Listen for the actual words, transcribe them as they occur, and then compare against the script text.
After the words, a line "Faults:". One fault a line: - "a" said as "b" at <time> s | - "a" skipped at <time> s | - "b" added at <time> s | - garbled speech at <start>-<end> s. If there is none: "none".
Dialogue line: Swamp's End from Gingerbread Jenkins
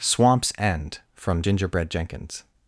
Swamp's End from Gingerbread Jenkins
Faults:
none